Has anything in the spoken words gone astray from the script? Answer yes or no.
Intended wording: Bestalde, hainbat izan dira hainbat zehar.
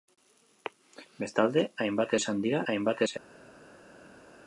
no